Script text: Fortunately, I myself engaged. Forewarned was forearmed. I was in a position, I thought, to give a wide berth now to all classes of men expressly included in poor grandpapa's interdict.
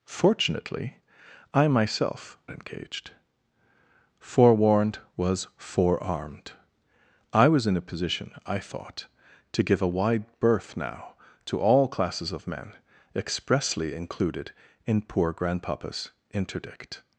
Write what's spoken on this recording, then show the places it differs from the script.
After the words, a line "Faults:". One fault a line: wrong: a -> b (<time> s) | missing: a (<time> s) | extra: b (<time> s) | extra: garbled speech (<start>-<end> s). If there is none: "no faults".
Fortunately, I myself engaged. Forewarned was forearmed. I was in a position, I thought, to give a wide berth now to all classes of men expressly included in poor grandpapa's interdict.
Faults:
no faults